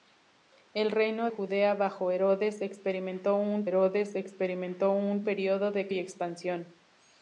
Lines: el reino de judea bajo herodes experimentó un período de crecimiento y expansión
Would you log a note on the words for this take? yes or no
yes